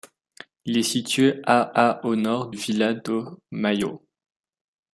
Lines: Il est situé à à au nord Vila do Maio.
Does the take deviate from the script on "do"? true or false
false